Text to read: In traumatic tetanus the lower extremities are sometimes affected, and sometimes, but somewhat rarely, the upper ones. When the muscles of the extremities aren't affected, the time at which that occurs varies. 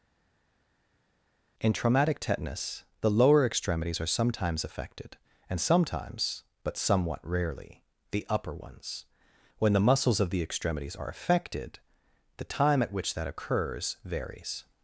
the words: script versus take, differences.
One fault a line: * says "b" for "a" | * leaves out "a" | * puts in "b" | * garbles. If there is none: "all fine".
* says "are" for "aren't"